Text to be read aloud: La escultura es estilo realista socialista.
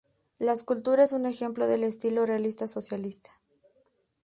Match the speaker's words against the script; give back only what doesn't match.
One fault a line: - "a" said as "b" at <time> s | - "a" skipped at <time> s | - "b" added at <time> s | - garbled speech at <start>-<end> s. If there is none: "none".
- "un ejemplo del" added at 1.1 s